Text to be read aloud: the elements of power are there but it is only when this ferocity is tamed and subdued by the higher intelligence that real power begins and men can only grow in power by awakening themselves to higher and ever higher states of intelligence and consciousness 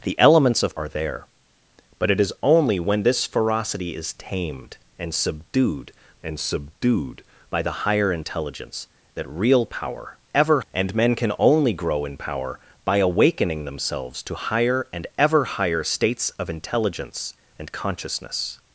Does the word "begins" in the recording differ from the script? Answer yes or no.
yes